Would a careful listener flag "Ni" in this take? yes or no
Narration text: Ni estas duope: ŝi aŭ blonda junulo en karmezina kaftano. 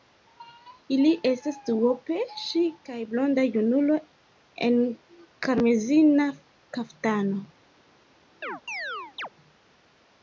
yes